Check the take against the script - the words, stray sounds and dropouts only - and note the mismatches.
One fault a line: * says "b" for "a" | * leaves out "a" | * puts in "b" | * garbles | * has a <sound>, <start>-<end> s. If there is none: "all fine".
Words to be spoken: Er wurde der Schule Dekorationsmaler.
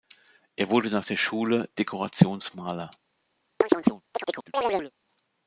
* puts in "nach"
* has a chirp, 3.6-4.9 s